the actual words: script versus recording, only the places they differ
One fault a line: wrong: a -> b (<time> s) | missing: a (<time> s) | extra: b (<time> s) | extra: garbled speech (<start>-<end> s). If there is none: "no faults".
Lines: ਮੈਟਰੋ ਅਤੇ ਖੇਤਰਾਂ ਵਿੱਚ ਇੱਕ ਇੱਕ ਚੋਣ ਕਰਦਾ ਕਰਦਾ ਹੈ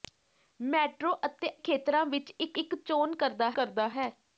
no faults